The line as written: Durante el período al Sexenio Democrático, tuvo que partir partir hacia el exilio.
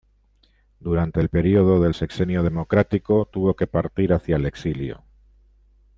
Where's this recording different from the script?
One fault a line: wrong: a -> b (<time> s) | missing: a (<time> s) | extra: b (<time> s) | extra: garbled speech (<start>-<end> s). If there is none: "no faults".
wrong: al -> del (1.8 s)
missing: partir (4.1 s)